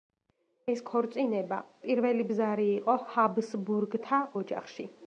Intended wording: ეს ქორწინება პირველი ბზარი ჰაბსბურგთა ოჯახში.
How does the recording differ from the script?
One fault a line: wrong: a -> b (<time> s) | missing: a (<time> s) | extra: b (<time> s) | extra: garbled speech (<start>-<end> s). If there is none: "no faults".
extra: იყო (2.8 s)